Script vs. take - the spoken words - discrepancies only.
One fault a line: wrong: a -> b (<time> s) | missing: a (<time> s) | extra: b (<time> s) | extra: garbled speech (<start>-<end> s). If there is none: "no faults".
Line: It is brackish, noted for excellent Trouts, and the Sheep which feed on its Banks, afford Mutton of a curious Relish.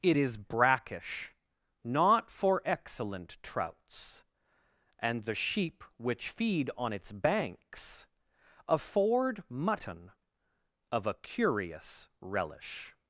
wrong: noted -> not (1.8 s)